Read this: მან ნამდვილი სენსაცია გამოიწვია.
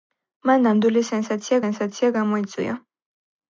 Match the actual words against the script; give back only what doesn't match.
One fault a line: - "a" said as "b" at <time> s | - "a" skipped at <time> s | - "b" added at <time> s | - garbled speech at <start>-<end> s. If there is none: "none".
- "სენსაცია" added at 1.6 s